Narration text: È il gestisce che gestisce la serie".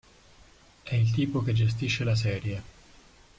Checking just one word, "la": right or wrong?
right